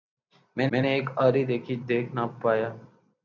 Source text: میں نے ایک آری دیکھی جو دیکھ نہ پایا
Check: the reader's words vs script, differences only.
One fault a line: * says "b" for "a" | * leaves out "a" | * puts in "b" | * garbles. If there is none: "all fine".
* puts in "میں"
* leaves out "جو"